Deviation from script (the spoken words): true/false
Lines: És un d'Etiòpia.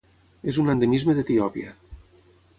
true